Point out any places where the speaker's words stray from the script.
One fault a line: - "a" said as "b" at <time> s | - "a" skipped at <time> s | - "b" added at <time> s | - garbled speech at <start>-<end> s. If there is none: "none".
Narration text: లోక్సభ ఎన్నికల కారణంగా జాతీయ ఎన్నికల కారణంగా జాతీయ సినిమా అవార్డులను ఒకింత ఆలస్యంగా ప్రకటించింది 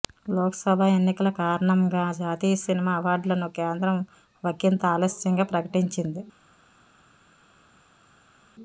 - "ఎన్నికల కారణంగా జాతీయ" skipped at 2.5 s
- "కేంద్రం" added at 3.6 s